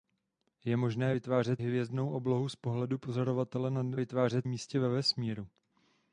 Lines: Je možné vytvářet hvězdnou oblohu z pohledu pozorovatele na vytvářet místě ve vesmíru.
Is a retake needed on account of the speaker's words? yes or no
no